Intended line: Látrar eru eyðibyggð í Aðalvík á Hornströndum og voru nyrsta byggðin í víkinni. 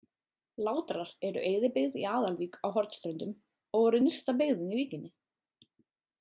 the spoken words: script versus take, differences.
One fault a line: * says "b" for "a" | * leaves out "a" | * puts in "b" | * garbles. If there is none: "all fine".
all fine